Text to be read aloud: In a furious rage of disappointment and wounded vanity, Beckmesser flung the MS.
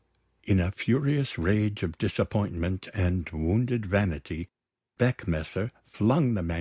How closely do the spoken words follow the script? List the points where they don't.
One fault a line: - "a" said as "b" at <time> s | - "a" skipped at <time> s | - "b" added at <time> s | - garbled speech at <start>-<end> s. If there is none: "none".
none